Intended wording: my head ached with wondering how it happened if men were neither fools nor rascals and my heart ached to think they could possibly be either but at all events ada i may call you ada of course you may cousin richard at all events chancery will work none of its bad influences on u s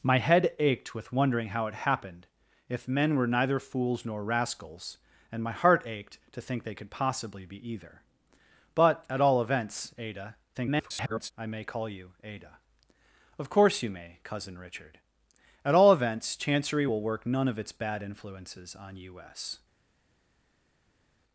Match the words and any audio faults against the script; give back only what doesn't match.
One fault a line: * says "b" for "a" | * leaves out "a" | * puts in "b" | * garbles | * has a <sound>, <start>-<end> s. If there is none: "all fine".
* garbles